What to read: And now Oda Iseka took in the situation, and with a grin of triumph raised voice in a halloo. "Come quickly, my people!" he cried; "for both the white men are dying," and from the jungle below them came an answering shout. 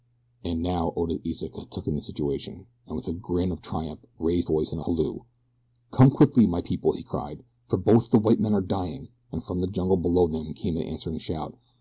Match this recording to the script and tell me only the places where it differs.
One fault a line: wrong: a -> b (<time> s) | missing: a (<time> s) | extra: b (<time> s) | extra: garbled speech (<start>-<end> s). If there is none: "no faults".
no faults